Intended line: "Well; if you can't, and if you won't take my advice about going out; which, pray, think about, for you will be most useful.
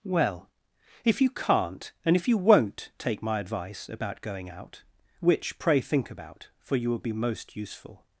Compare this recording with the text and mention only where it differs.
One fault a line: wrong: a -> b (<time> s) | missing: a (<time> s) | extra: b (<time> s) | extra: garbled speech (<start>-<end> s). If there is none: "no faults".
no faults